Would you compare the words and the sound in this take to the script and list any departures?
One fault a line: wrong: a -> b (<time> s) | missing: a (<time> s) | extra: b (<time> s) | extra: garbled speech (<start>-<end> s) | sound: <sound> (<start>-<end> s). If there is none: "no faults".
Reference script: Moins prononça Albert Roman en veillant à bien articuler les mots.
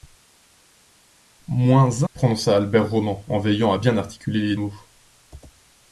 no faults